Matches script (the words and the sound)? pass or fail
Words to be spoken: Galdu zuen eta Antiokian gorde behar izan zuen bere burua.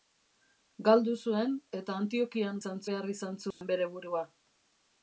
fail